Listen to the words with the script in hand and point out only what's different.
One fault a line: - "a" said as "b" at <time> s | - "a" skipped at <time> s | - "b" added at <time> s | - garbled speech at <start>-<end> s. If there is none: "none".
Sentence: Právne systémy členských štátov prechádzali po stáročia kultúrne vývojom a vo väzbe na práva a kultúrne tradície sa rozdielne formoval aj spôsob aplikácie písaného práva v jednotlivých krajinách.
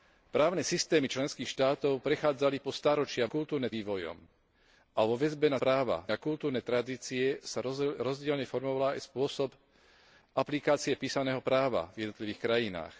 none